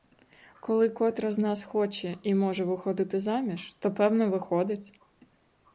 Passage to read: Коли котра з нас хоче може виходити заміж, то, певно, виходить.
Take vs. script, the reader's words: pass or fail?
fail